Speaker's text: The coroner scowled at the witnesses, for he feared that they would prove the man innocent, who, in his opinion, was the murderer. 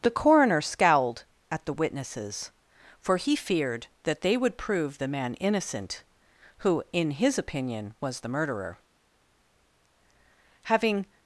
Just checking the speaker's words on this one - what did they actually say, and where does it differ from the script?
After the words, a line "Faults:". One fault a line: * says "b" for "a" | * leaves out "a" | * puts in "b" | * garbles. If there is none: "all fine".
The coroner scowled at the witnesses, for he feared that they would prove the man innocent, who, in his opinion, was the murderer. Having
Faults:
* puts in "Having"